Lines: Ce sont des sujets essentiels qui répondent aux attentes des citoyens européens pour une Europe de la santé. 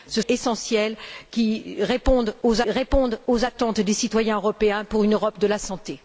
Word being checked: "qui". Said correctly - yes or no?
no